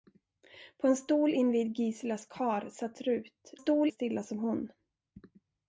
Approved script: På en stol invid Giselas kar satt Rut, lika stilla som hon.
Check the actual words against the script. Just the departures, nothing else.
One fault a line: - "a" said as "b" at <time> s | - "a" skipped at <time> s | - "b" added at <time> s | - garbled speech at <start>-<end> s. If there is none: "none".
- "lika" said as "stol" at 3.5 s